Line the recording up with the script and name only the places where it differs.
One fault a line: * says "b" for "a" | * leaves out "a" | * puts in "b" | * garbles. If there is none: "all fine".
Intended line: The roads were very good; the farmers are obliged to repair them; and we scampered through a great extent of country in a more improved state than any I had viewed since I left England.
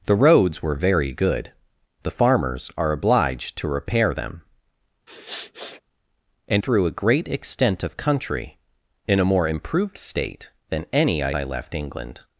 * leaves out "we scampered"
* leaves out "had viewed since"